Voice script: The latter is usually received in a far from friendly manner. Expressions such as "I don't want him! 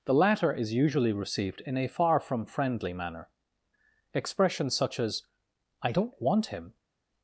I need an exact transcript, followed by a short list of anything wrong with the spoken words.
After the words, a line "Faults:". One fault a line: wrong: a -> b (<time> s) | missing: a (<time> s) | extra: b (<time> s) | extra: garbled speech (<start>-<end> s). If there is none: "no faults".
The latter is usually received in a far from friendly manner. Expressions such as "I don't want him!
Faults:
no faults